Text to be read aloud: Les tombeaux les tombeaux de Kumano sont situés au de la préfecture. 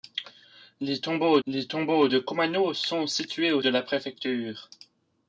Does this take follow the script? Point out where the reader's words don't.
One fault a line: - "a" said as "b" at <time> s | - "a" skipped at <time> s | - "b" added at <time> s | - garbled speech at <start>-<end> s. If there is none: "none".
none